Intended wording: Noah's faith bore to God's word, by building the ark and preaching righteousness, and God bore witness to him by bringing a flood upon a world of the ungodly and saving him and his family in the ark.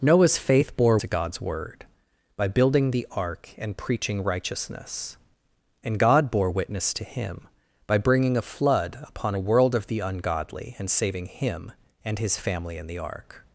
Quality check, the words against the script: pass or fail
pass